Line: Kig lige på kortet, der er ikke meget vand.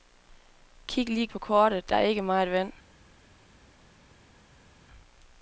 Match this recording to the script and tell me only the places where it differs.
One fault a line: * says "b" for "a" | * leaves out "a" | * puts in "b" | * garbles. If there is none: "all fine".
all fine